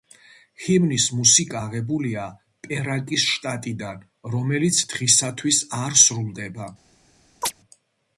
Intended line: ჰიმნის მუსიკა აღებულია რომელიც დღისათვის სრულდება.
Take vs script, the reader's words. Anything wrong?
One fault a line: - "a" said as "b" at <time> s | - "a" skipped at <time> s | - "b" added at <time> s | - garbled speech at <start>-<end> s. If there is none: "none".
- "პერაკის შტატიდან" added at 2.7 s
- "არ" added at 5.8 s